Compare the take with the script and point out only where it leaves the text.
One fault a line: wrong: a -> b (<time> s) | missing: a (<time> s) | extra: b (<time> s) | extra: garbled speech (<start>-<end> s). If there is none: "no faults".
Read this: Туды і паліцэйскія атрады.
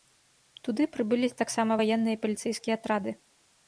extra: прыбылі таксама ваенныя (0.9 s)